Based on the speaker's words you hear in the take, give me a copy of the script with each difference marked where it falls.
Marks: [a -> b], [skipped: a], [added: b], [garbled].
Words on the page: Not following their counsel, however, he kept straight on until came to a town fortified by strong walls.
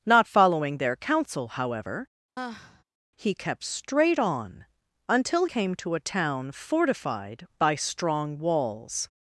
Not following their counsel, however, he kept straight on until came to a town fortified by strong walls.